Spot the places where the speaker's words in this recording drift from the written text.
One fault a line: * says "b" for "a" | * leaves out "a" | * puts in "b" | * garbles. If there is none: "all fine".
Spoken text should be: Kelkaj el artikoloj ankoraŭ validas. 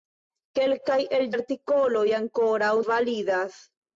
all fine